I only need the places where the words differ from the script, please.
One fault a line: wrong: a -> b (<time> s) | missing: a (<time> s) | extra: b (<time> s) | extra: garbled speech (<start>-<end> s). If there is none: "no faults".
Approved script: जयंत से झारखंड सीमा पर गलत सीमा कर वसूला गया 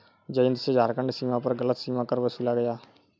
no faults